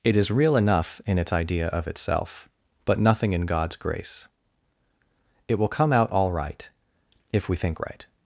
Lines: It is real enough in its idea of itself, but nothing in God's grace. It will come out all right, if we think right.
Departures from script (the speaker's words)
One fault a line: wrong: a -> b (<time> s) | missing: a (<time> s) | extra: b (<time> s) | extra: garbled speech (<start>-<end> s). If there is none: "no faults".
no faults